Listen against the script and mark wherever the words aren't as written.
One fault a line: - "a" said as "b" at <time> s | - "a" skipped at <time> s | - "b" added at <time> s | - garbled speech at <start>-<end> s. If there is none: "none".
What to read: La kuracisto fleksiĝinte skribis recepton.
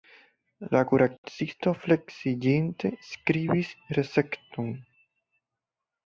none